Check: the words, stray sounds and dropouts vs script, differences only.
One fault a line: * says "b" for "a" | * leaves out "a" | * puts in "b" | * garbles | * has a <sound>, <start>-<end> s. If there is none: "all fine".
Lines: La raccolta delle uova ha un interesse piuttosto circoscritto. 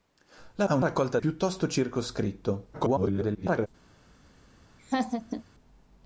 * leaves out "raccolta delle uova"
* says "raccolta" for "interesse"
* garbles
* has a laugh, 4.8-5.4 s